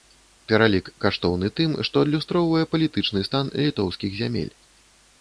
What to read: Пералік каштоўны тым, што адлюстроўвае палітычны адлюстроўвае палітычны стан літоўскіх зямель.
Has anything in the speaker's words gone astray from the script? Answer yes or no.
yes